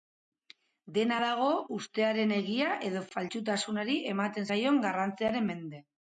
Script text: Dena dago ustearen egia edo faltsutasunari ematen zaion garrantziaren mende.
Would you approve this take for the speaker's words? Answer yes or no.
yes